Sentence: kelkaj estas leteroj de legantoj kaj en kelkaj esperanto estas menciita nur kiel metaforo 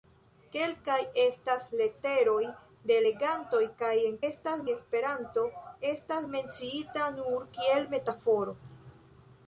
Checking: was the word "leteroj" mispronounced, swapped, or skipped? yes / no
no